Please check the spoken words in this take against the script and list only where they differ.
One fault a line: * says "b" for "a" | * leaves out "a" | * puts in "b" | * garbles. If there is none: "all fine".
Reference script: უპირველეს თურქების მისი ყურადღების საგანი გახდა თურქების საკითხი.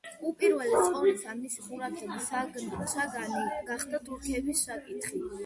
* says "ყოვლისა" for "თურქების"